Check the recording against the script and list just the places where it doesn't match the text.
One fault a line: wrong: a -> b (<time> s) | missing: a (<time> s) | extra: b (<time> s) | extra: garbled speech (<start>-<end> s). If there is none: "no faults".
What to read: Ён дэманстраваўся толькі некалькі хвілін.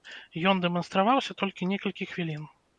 no faults